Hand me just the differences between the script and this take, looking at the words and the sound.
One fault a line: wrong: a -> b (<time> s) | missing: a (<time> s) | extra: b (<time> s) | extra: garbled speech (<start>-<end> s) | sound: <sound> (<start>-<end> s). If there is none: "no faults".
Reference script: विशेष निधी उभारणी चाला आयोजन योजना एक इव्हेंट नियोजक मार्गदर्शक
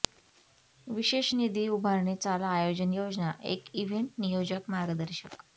no faults